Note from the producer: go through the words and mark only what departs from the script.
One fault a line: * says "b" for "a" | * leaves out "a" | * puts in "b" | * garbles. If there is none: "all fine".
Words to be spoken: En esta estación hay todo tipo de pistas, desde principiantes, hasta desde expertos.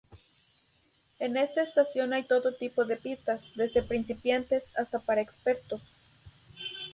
* says "para" for "desde"